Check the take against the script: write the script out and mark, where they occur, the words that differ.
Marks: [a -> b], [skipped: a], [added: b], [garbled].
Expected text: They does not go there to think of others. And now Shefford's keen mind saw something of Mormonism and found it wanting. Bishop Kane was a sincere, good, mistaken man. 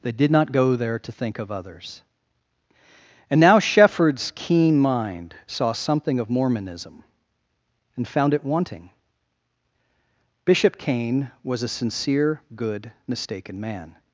They [does -> did] not go there to think of others. And now Shefford's keen mind saw something of Mormonism and found it wanting. Bishop Kane was a sincere, good, mistaken man.